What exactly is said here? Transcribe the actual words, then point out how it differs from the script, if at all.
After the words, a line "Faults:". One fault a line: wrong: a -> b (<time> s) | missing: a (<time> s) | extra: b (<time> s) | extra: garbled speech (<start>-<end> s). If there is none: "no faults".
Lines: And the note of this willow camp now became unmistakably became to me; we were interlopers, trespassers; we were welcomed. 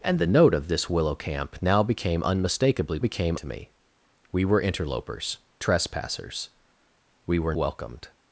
And the note of this willow camp now became unmistakably became to me; we were interlopers, trespassers; we were welcomed.
Faults:
no faults